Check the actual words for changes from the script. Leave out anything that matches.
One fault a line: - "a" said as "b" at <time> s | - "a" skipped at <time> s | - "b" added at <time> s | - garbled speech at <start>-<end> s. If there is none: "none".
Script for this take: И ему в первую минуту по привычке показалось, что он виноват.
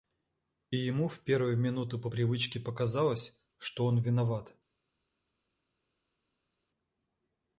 none